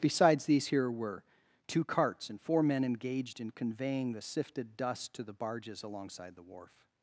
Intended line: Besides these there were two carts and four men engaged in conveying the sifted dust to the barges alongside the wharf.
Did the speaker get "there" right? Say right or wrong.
wrong